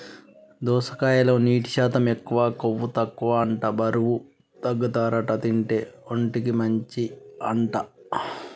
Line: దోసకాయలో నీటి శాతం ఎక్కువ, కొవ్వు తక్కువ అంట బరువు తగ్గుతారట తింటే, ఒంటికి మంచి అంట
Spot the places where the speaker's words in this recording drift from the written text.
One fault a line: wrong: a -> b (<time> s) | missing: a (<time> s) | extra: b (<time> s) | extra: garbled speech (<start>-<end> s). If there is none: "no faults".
no faults